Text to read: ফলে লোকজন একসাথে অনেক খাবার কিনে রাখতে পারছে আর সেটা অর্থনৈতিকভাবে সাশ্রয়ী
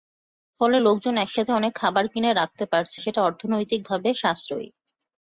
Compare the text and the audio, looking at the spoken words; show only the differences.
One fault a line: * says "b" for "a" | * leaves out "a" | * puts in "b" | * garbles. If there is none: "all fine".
* leaves out "আর"